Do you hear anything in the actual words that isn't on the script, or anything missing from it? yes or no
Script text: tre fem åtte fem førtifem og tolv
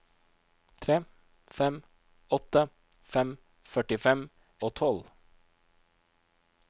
no